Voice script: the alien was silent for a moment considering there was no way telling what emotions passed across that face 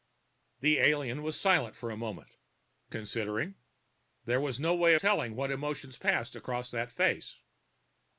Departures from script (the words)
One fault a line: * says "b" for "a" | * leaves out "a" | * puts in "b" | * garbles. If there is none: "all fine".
all fine